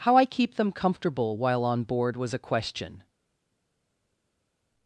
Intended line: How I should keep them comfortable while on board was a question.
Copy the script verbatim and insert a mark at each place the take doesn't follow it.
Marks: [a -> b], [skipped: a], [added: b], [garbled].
How I [skipped: should] keep them comfortable while on board was a question.